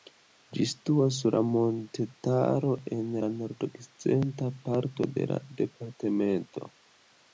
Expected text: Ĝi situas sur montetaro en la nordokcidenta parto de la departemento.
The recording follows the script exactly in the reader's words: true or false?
true